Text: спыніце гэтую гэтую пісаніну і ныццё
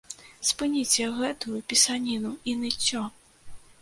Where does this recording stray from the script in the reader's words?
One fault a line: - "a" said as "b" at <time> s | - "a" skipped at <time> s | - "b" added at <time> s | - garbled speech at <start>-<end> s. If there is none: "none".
- "гэтую" skipped at 1.6 s